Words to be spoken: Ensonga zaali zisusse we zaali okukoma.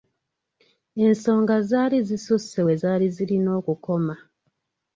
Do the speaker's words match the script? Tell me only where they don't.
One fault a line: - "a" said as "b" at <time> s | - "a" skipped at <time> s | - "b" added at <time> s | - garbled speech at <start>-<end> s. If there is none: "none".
- "zirina" added at 3.2 s